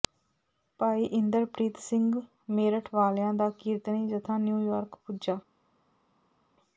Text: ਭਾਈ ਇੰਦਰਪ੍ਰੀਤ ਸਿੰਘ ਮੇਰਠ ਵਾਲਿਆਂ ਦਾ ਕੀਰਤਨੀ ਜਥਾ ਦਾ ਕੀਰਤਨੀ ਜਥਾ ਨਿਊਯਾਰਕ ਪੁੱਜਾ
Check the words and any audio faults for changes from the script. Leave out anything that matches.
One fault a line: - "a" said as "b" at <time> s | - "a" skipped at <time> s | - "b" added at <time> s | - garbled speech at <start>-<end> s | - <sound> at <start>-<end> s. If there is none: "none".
- "ਦਾ ਕੀਰਤਨੀ ਜਥਾ" skipped at 4.4 s